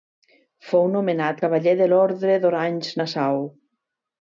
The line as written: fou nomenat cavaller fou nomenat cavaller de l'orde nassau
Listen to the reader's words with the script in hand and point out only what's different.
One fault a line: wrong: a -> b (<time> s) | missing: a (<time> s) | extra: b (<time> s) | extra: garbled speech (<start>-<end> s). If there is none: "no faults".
missing: fou nomenat cavaller (1.7 s)
extra: d'orange (2.5 s)